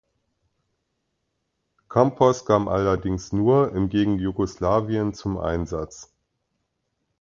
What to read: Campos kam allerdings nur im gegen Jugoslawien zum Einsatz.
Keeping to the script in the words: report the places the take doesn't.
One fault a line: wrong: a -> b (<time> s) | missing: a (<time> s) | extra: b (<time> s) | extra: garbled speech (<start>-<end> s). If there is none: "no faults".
no faults